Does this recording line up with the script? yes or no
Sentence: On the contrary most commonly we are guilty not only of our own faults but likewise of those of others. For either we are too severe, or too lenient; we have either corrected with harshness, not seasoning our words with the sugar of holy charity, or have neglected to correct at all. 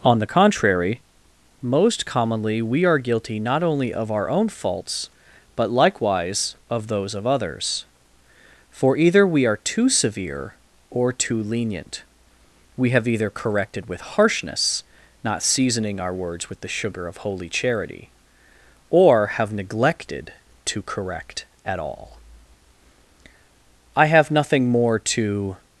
no